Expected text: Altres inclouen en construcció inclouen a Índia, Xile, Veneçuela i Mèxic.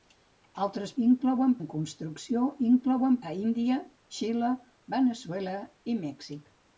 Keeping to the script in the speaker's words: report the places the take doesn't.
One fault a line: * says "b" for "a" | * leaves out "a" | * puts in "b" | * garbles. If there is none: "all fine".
all fine